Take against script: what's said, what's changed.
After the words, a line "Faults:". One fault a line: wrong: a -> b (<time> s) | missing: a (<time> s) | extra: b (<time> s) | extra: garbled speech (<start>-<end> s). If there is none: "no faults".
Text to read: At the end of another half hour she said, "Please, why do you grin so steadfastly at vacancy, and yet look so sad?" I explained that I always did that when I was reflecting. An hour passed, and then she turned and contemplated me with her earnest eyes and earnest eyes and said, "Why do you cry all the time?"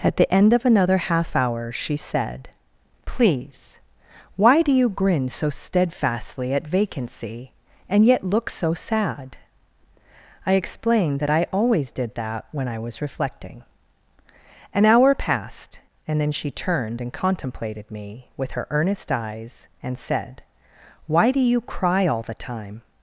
At the end of another half hour she said, "Please, why do you grin so steadfastly at vacancy, and yet look so sad?" I explained that I always did that when I was reflecting. An hour passed, and then she turned and contemplated me with her earnest eyes and said, "Why do you cry all the time?"
Faults:
missing: earnest eyes and (20.0 s)